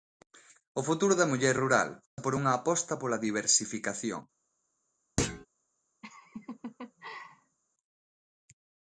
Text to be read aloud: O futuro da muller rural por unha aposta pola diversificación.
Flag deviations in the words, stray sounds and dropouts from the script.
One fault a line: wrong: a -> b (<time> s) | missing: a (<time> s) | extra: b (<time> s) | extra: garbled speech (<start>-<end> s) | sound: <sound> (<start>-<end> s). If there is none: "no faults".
sound: thud (5.2-5.5 s)
sound: laugh (6.0-7.6 s)